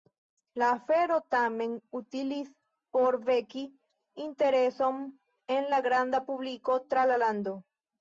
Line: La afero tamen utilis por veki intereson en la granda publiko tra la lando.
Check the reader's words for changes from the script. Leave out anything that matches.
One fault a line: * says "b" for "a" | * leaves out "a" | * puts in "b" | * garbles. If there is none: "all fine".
all fine